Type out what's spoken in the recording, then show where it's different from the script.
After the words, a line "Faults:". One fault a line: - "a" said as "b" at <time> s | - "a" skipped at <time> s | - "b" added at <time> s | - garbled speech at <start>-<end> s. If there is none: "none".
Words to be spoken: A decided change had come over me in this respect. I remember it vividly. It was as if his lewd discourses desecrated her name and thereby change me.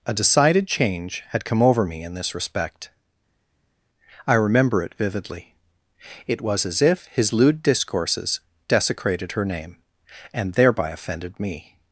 A decided change had come over me in this respect. I remember it vividly. It was as if his lewd discourses desecrated her name and thereby offended me.
Faults:
- "change" said as "offended" at 10.9 s